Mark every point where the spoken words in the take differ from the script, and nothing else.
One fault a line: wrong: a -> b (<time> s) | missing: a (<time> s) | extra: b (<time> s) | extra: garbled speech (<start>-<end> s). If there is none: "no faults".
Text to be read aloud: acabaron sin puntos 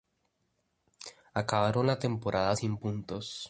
extra: la temporada (1.9 s)